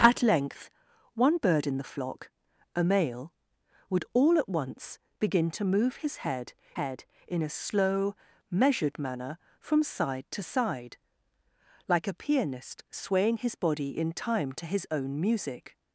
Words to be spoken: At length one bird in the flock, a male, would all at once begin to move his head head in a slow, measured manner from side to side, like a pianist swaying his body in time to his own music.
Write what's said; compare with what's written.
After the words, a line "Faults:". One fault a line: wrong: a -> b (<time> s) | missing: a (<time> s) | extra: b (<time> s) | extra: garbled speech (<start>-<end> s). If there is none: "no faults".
At length one bird in the flock, a male, would all at once begin to move his head head in a slow, measured manner from side to side, like a pianist swaying his body in time to his own music.
Faults:
no faults